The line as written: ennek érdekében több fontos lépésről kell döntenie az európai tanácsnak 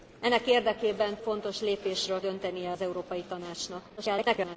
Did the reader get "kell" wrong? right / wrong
wrong